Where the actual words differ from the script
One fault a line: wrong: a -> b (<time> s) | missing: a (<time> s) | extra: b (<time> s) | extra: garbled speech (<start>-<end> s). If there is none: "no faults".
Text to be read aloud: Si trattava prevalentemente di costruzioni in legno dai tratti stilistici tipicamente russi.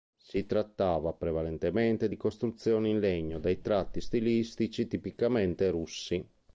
no faults